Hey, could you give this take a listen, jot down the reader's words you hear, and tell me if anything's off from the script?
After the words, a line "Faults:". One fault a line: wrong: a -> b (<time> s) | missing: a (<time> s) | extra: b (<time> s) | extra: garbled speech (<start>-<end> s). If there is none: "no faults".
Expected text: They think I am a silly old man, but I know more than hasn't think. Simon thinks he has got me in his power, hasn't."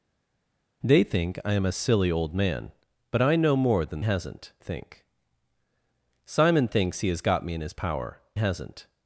They think I am a silly old man, but I know more than hasn't think. Simon thinks he has got me in his power, hasn't."
Faults:
no faults